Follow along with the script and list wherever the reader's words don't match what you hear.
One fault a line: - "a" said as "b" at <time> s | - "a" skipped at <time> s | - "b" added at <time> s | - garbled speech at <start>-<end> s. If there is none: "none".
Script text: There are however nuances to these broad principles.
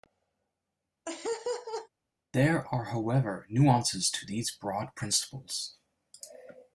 none